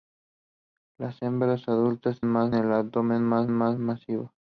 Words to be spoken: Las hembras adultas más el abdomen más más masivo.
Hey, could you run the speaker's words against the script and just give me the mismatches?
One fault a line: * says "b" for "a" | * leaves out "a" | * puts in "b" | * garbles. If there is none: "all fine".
all fine